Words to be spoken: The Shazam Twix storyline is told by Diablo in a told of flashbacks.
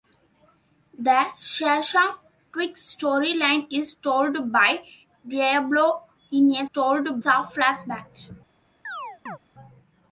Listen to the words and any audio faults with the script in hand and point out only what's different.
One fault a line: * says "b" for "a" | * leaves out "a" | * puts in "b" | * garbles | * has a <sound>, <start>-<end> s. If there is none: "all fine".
* has a chirp, 8.8-9.4 s